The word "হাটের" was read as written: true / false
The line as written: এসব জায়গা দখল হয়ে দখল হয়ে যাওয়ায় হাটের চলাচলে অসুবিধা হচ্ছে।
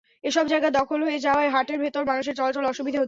false